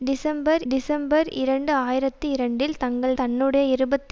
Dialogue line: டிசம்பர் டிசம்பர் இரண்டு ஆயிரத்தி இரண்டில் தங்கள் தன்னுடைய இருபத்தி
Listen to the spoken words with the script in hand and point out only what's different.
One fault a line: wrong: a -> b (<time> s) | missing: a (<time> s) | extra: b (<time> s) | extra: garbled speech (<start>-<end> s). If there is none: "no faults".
no faults